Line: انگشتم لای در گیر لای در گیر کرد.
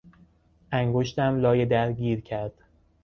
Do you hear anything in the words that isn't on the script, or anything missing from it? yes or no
yes